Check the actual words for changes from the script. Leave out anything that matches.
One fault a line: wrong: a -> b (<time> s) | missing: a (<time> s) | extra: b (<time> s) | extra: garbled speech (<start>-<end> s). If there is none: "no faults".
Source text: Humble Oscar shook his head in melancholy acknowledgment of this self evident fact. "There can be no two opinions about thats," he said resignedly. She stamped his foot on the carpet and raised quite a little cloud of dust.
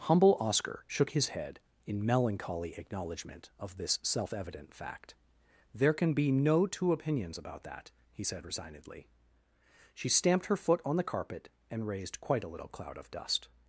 wrong: thats -> that (7.6 s)
wrong: his -> her (10.5 s)